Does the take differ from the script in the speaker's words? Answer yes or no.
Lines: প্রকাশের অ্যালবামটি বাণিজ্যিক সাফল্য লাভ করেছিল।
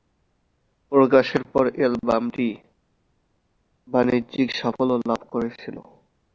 yes